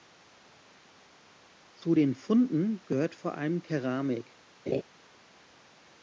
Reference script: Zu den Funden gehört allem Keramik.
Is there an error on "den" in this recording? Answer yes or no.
no